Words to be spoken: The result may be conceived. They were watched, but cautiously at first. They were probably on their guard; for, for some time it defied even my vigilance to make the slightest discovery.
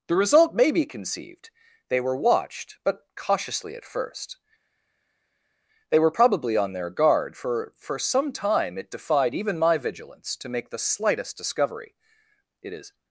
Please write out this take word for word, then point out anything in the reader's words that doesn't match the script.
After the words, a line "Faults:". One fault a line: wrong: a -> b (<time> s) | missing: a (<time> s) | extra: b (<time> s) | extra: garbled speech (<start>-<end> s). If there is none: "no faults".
The result may be conceived. They were watched, but cautiously at first. They were probably on their guard; for, for some time it defied even my vigilance to make the slightest discovery. It is
Faults:
extra: It is (12.6 s)